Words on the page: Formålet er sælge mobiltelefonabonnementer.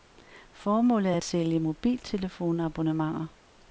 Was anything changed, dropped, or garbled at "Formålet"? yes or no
no